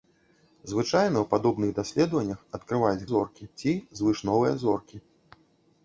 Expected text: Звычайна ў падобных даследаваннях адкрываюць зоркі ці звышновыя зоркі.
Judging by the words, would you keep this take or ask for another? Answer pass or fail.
pass